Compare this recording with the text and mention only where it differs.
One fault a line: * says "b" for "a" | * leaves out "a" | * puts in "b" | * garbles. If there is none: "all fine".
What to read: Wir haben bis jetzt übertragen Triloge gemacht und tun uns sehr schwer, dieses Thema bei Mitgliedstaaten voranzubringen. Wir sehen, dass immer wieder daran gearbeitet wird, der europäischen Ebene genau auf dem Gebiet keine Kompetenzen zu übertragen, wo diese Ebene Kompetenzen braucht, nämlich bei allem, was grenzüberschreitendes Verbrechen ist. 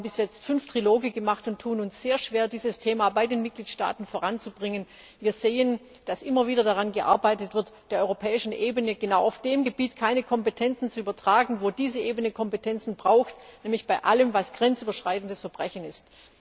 * says "fünf" for "übertragen"
* puts in "den"